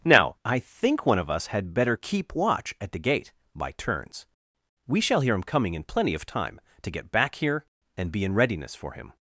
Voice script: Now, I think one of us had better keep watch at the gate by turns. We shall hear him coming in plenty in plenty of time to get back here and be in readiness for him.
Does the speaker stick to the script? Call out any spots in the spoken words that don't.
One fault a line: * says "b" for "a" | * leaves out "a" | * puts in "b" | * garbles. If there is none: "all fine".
* leaves out "in plenty"